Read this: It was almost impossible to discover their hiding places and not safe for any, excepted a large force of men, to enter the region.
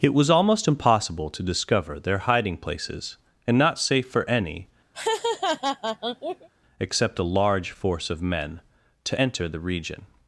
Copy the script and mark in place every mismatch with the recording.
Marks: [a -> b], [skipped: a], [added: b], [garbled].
It was almost impossible to discover their hiding places and not safe for any, [excepted -> except] a large force of men, to enter the region.